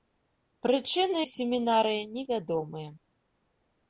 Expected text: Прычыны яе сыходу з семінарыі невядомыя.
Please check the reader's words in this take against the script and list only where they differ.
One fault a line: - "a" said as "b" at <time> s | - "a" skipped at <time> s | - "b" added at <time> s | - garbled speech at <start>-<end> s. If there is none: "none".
- "яе сыходу" skipped at 1.2 s